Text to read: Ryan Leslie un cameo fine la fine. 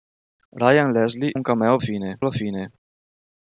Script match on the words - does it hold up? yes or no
yes